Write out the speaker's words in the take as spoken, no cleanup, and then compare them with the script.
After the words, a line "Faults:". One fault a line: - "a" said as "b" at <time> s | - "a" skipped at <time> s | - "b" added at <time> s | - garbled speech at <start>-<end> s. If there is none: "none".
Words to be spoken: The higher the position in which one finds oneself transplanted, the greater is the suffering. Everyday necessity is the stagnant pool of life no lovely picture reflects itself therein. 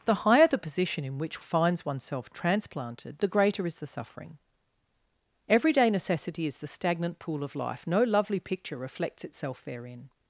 The higher the position in which finds oneself transplanted, the greater is the suffering. Everyday necessity is the stagnant pool of life no lovely picture reflects itself therein.
Faults:
- "one" skipped at 1.4 s